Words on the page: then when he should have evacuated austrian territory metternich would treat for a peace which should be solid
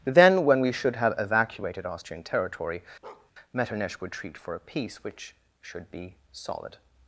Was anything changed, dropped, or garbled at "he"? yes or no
yes